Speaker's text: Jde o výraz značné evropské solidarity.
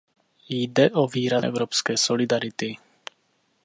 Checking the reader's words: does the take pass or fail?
fail